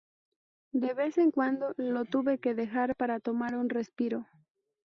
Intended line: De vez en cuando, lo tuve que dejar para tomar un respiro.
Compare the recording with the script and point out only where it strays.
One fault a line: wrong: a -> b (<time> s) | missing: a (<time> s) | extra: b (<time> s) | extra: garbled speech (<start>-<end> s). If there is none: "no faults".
no faults